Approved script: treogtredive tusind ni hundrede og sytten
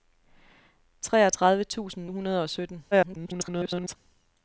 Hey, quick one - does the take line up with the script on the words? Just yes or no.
no